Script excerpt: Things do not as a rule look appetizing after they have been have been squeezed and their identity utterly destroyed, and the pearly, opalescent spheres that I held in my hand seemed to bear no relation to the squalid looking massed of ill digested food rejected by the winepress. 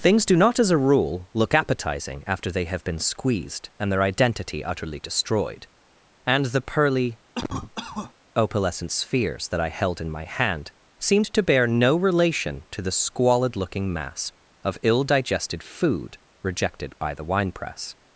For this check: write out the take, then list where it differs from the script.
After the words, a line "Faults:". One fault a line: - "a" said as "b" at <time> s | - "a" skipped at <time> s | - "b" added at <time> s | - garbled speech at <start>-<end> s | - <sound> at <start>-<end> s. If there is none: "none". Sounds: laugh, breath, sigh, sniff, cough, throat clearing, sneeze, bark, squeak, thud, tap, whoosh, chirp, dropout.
Things do not as a rule look appetizing after they have been squeezed and their identity utterly destroyed, and the pearly, opalescent spheres that I held in my hand seemed to bear no relation to the squalid looking mass of ill digested food rejected by the winepress.
Faults:
- "have been" skipped at 3.0 s
- cough at 7.3-8.1 s
- "massed" said as "mass" at 13.9 s